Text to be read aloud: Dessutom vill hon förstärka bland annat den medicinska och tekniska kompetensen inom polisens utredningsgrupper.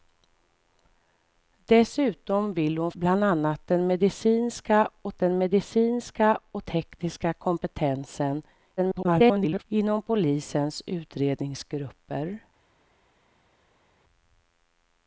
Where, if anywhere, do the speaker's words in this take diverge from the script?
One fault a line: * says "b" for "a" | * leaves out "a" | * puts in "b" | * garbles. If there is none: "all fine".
* leaves out "förstärka"
* puts in "den medicinska och"
* garbles